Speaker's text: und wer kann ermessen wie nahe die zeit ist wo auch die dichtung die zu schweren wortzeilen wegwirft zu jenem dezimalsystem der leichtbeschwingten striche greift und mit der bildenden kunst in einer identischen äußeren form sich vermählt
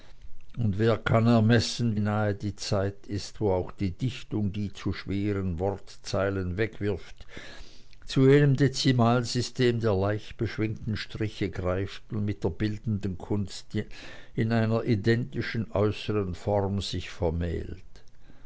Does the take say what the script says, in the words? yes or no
no